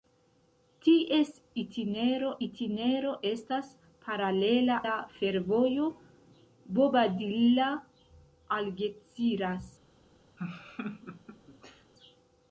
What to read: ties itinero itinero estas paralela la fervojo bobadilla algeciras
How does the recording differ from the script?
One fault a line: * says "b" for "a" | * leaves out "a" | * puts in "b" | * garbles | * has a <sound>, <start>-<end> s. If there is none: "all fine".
* has a laugh, 10.4-11.9 s